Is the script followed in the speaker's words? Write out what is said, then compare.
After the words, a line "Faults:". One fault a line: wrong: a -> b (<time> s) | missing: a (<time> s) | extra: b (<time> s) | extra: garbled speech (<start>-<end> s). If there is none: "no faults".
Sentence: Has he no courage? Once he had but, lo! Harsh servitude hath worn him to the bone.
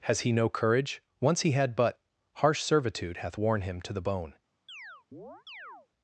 Has he no courage? Once he had but, Harsh servitude hath worn him to the bone.
Faults:
missing: lo (2.0 s)